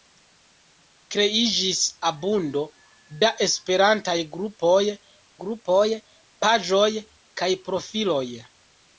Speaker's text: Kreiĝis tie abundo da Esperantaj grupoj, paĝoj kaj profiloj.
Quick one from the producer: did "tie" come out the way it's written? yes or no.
no